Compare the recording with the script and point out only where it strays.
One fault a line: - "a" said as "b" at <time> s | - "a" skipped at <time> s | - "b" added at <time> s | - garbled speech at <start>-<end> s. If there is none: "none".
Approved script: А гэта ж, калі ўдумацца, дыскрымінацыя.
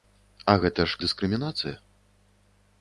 - "калі ўдумацца" skipped at 1.0 s